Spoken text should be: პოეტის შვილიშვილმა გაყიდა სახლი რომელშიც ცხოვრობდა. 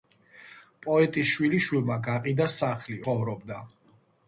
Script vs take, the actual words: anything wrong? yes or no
yes